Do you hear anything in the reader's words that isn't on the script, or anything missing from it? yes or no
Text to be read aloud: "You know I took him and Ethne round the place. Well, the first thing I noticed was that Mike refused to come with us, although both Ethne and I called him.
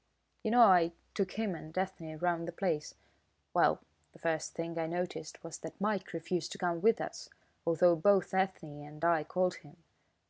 no